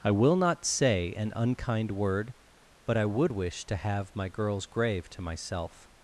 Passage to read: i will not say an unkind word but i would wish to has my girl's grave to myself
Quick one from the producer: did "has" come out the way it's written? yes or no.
no